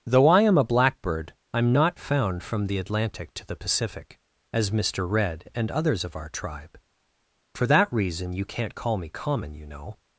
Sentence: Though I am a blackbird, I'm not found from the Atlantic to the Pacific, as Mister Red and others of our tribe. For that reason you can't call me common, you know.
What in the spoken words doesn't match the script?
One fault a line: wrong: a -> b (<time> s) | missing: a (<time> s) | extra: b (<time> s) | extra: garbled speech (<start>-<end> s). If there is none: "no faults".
no faults